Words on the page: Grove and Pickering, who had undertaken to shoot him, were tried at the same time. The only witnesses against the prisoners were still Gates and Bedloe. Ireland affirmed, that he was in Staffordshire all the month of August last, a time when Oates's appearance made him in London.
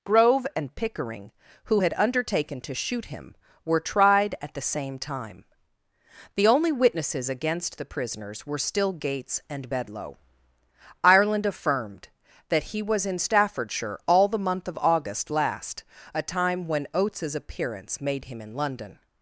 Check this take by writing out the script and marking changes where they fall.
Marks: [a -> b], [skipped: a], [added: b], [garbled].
Grove and Pickering, who had undertaken to shoot him, were tried at the same time. The only witnesses against the prisoners were still Gates and Bedloe. Ireland affirmed, that he was in Staffordshire all the month of August last, a time when Oates's appearance made him in London.